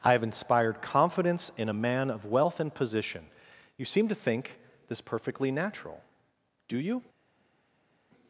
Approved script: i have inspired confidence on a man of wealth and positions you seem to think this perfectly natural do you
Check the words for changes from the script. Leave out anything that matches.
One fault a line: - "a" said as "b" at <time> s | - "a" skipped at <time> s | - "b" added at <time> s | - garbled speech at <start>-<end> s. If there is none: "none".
- "on" said as "in" at 1.6 s
- "positions" said as "position" at 2.7 s